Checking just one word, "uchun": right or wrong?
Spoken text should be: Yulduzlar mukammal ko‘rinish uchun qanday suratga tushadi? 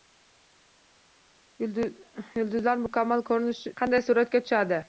wrong